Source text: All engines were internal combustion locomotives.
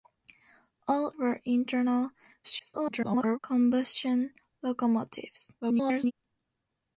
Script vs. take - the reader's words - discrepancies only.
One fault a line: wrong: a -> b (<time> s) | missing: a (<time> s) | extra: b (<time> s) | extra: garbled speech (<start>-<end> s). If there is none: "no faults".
missing: engines (1.1 s)
extra: garbled speech (2.4-3.4 s)
extra: garbled speech (5.6-6.1 s)